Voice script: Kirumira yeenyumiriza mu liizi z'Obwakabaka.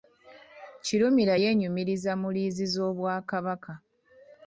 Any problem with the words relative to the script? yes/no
no